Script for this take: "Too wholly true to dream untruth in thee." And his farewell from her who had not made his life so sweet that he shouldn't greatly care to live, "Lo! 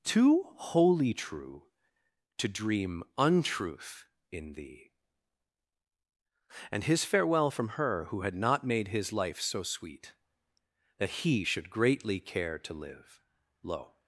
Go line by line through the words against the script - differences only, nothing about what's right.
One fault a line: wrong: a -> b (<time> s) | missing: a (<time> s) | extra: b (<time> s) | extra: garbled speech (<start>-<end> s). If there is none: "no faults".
wrong: shouldn't -> should (11.4 s)